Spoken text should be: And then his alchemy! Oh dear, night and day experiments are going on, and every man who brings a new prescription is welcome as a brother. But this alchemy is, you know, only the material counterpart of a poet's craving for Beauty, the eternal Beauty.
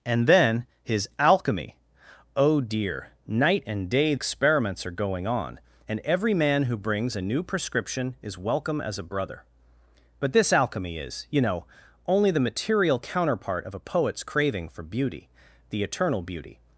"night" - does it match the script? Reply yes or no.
yes